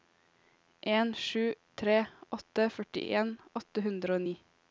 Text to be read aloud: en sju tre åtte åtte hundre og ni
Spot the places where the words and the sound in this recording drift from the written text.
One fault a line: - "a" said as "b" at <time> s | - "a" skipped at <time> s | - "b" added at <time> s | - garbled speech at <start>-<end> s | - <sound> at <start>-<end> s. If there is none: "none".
- "førtien" added at 2.8 s